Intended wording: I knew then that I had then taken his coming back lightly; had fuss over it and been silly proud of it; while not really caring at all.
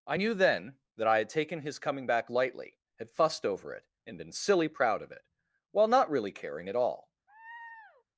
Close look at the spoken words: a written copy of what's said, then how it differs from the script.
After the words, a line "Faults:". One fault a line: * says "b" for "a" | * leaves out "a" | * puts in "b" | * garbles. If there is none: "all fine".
I knew then that I had taken his coming back lightly; had fussed over it and been silly proud of it; while not really caring at all.
Faults:
* leaves out "then"
* says "fussed" for "fuss"